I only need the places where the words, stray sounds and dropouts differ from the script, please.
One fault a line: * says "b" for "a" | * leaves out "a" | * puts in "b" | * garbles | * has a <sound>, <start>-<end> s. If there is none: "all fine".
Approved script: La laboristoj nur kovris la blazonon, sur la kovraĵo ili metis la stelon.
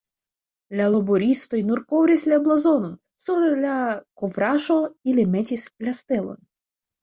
all fine